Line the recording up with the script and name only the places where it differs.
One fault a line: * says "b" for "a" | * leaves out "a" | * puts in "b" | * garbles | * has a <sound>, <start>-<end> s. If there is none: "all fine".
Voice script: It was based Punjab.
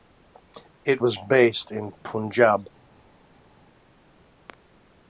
* puts in "in"